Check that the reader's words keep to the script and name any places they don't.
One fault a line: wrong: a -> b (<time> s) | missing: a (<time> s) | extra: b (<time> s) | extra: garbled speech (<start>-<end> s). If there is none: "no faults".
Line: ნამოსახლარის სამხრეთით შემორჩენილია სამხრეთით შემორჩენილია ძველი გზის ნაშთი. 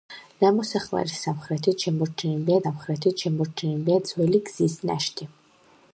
no faults